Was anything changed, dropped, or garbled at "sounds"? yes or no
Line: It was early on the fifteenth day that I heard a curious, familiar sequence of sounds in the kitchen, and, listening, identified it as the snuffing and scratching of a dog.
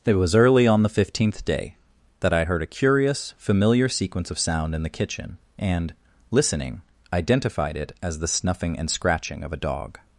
yes